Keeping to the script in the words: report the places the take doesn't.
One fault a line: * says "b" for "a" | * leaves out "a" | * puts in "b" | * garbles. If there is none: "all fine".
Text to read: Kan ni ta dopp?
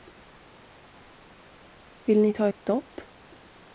* says "Vill" for "Kan"
* puts in "ett"